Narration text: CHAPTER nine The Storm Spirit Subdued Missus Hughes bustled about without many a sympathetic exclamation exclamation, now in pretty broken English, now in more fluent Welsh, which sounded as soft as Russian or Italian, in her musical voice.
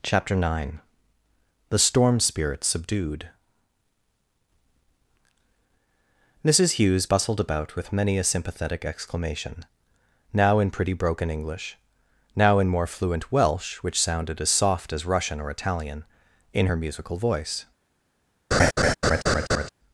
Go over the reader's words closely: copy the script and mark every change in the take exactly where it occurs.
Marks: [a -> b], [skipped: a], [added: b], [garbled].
CHAPTER nine The Storm Spirit Subdued Missus Hughes bustled about [without -> with] many a sympathetic exclamation [skipped: exclamation,] now in pretty broken English, now in more fluent Welsh, which sounded as soft as Russian or Italian, in her musical voice.